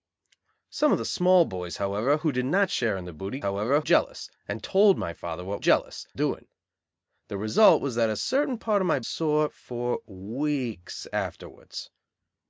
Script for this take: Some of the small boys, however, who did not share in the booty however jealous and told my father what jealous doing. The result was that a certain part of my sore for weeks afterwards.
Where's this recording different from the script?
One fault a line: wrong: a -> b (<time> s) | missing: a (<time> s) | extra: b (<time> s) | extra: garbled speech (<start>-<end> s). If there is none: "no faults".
no faults